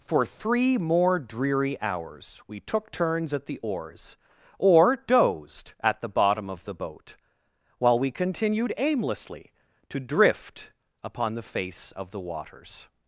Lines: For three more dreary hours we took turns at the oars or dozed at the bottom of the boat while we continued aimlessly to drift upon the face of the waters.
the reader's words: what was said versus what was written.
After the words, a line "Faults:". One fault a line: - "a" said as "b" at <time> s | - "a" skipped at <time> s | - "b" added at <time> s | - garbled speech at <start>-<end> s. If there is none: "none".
For three more dreary hours we took turns at the oars or dozed at the bottom of the boat while we continued aimlessly to drift upon the face of the waters.
Faults:
none